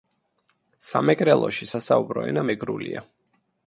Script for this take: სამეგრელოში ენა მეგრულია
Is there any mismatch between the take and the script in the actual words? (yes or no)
yes